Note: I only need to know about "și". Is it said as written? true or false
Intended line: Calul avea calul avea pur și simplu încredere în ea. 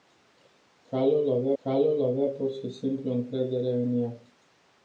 true